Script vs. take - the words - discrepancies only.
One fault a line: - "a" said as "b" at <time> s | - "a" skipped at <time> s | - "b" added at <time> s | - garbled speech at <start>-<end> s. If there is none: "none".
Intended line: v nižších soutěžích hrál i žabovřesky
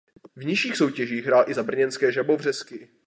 - "za brněnské" added at 1.5 s